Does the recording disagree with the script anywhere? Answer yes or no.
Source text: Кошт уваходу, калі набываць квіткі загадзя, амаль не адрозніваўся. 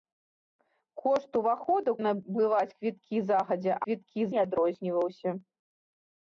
yes